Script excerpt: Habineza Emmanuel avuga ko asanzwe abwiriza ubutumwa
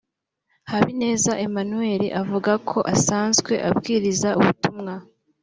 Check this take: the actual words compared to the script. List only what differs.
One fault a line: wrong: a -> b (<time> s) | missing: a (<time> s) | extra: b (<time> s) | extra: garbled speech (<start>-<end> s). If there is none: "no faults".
no faults